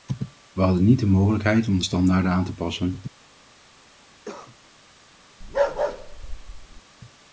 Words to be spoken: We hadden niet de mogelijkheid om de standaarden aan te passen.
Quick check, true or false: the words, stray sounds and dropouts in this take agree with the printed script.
false